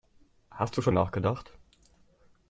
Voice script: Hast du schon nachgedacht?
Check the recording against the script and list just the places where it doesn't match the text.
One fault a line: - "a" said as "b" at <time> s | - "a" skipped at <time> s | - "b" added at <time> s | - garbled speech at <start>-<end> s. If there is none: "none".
none